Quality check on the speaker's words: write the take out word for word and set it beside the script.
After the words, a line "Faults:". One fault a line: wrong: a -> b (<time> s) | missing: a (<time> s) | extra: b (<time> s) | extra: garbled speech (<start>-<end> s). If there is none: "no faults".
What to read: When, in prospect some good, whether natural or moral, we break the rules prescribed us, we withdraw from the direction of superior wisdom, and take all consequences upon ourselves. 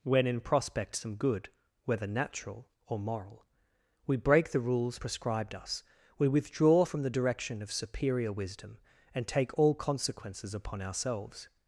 When, in prospect some good, whether natural or moral, we break the rules prescribed us, we withdraw from the direction of superior wisdom, and take all consequences upon ourselves.
Faults:
no faults